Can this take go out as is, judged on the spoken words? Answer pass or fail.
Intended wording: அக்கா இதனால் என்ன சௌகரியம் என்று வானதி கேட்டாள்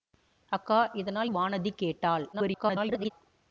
fail